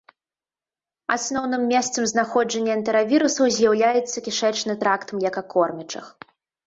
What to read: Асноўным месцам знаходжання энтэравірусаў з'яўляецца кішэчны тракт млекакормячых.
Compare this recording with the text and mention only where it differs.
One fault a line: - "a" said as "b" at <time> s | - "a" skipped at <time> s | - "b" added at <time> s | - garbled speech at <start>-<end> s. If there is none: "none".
none